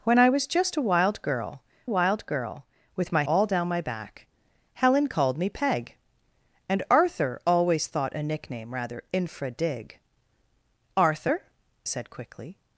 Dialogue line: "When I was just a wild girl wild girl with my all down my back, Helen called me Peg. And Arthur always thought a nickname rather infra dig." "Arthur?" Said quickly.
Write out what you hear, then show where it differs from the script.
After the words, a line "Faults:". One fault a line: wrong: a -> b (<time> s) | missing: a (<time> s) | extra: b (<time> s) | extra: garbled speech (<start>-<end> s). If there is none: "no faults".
"When I was just a wild girl wild girl with my all down my back, Helen called me Peg. And Arthur always thought a nickname rather infra dig." "Arthur?" Said quickly.
Faults:
no faults